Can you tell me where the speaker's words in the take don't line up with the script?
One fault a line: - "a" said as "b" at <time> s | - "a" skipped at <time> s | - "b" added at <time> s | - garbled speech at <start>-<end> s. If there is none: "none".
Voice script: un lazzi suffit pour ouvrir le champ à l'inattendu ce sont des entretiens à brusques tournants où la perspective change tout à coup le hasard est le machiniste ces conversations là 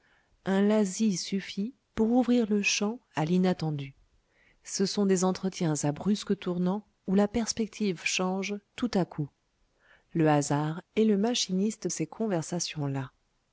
none